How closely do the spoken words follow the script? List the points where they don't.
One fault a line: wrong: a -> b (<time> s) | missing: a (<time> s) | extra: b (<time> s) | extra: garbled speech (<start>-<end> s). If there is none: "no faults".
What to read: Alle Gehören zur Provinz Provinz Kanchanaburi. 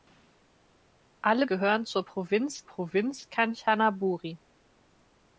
no faults